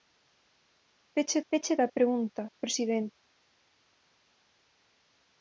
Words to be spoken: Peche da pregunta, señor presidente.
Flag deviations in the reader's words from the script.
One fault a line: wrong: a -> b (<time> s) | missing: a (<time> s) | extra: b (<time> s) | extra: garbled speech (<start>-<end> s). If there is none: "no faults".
extra: peche (1.5 s)
missing: señor (2.4 s)